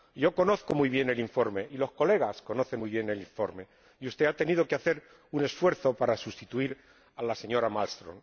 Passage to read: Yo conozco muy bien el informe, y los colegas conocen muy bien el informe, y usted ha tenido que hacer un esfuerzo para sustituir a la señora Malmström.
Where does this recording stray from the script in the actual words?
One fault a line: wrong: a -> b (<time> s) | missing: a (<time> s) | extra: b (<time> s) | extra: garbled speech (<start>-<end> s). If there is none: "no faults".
no faults